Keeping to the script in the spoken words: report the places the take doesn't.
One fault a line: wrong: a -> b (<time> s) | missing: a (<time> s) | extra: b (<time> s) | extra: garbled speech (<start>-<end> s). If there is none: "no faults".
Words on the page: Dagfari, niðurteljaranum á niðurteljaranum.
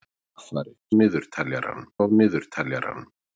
no faults